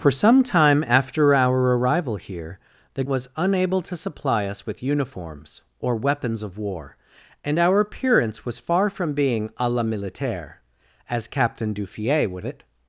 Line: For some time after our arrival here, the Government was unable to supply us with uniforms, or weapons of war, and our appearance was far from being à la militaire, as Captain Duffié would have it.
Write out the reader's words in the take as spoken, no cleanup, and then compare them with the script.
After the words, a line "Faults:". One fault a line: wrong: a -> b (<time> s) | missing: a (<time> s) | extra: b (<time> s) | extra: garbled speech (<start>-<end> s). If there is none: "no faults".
For some time after our arrival here, the Was unable to supply us with uniforms, or weapons of war, and our appearance was far from being à la militaire, as Captain Duffié would it.
Faults:
missing: Government (3.0 s)
missing: have (12.4 s)